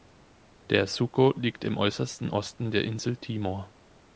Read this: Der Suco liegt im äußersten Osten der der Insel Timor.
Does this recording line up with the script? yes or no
no